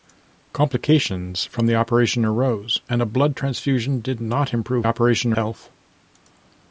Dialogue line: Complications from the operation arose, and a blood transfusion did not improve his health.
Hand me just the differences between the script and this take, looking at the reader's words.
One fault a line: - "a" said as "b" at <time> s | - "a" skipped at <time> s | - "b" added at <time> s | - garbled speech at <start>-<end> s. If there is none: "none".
- "his" said as "operation" at 4.8 s